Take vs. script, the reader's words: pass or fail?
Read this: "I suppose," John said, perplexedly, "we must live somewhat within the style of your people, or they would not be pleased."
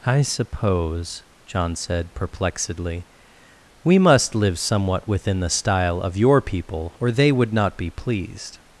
pass